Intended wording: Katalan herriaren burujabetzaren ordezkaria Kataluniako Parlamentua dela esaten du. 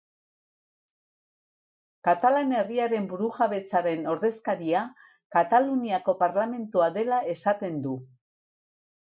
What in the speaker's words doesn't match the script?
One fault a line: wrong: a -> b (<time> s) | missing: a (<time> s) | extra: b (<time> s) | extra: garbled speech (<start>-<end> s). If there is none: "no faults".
no faults